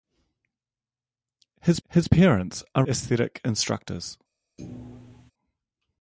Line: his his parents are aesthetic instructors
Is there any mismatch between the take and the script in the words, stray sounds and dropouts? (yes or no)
yes